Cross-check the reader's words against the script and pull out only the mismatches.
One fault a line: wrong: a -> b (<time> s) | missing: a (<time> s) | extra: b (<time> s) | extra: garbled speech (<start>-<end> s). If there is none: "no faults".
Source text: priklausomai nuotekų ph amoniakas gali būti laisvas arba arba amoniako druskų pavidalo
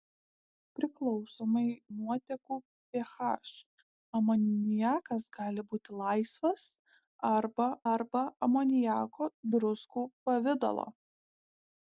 no faults